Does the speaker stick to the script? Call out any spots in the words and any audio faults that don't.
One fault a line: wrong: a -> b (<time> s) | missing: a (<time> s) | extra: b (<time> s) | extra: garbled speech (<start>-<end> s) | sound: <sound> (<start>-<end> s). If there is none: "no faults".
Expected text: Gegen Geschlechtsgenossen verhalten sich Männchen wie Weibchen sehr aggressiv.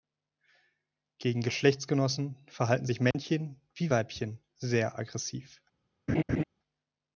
sound: dropout (3.1-3.1 s)
sound: laugh (6.1-6.4 s)